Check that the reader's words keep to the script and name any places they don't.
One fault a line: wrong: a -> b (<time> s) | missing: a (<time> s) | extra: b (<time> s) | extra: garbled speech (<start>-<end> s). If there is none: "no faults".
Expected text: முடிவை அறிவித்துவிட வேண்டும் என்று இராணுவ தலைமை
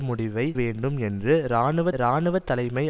missing: அறிவித்துவிட (0.5 s)
extra: இராணுவ (2.0 s)